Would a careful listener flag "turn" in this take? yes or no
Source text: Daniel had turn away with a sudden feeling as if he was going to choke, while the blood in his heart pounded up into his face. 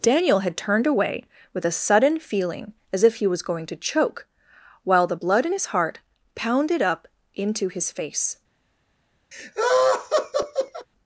yes